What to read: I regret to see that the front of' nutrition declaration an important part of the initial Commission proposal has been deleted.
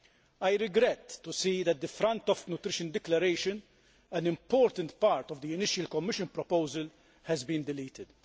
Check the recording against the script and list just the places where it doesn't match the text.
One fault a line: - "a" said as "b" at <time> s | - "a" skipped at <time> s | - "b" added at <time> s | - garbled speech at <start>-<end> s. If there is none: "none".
none